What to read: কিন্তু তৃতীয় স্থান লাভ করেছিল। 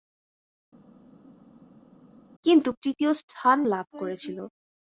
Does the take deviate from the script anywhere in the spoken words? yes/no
no